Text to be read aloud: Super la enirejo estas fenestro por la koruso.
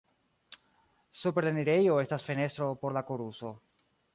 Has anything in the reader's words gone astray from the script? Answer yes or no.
no